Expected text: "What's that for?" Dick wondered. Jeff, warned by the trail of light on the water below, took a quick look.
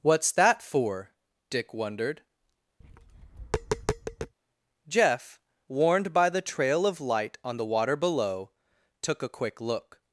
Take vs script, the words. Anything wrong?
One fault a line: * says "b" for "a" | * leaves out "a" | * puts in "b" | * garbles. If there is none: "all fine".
all fine